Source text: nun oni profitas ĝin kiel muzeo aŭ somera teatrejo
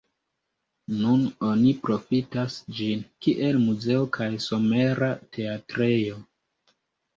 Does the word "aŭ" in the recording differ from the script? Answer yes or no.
yes